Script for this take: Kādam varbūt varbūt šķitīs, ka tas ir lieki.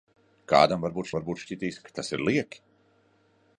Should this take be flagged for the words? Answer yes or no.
no